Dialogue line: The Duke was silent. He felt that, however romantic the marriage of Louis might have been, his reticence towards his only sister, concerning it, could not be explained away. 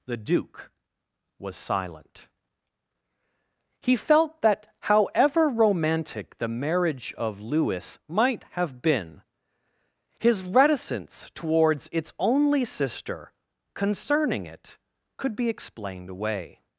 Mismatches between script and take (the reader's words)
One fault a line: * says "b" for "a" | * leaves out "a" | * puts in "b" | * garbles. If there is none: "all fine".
* says "its" for "his"
* leaves out "not"